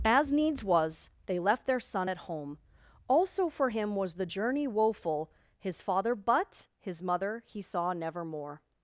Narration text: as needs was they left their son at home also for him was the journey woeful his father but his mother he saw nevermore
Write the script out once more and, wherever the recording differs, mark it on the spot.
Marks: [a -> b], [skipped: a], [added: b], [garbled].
as needs was they left their son at home also for him was the journey woeful his father but his mother he saw nevermore